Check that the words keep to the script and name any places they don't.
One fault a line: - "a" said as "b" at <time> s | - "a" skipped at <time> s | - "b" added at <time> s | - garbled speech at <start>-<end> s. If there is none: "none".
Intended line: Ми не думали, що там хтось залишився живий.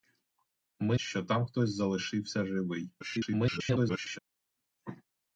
- "не думали" skipped at 1.0 s
- garbled speech at 3.0-4.2 s